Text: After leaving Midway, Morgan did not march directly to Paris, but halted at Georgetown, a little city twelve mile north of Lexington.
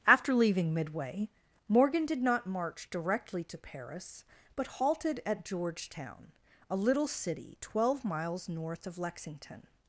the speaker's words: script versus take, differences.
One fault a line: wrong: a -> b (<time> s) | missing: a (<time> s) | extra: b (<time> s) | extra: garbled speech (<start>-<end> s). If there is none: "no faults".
wrong: mile -> miles (8.0 s)